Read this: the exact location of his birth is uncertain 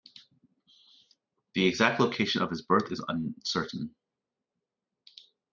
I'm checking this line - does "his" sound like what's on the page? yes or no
yes